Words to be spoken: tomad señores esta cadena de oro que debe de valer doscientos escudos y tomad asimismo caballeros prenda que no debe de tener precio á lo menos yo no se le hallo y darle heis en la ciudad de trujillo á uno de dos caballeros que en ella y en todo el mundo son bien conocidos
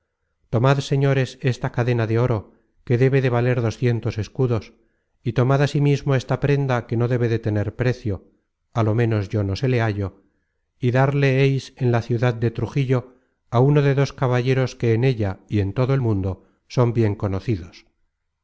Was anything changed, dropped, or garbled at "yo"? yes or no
no